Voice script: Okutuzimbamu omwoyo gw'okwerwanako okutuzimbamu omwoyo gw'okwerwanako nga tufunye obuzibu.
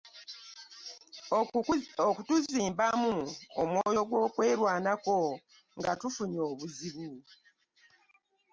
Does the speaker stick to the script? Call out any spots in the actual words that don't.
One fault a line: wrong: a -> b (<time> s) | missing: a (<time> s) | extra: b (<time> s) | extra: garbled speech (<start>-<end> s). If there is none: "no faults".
missing: okutuzimbamu omwoyo gw'okwerwanako (5.2 s)